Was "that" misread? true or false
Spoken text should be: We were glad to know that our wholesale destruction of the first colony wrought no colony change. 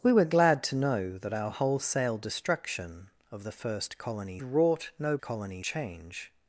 false